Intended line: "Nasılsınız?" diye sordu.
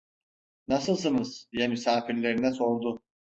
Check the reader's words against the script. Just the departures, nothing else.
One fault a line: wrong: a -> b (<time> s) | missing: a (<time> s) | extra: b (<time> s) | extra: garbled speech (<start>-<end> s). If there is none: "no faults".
extra: misafirlerine (1.7 s)